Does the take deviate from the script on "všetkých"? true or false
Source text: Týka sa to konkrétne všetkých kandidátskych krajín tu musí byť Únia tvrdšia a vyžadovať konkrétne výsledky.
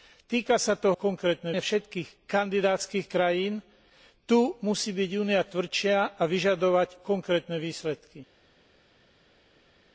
false